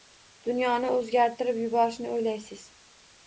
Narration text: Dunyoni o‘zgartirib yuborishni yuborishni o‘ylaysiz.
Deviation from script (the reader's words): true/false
true